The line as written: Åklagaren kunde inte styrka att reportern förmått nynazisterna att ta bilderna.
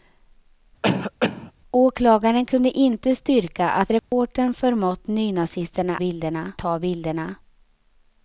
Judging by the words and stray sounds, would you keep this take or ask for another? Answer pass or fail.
fail